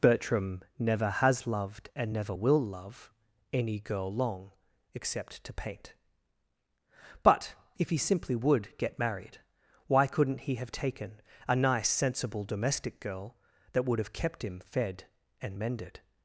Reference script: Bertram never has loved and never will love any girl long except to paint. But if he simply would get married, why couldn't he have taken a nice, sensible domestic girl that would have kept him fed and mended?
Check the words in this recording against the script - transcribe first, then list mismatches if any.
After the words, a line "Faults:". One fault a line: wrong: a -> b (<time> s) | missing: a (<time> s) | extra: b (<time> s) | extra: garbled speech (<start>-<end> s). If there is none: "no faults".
Bertram never has loved and never will love any girl long except to paint. But if he simply would get married, why couldn't he have taken a nice, sensible domestic girl that would have kept him fed and mended?
Faults:
no faults